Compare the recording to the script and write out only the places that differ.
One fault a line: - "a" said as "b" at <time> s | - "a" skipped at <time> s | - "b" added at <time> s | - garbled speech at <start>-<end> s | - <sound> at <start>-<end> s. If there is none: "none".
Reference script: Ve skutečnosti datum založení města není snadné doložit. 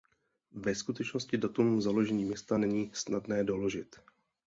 none